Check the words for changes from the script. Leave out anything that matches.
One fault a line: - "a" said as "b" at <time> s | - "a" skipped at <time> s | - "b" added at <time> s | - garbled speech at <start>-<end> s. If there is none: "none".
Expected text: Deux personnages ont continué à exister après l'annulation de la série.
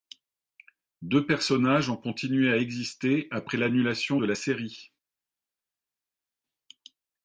none